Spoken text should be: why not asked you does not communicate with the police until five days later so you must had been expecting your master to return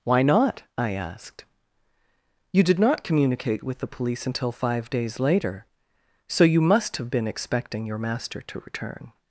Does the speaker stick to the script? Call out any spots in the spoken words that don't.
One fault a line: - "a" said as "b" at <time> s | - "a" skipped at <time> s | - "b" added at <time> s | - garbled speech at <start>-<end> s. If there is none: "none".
- "i" added at 0.8 s
- "does" said as "did" at 2.6 s
- "had" said as "have" at 7.0 s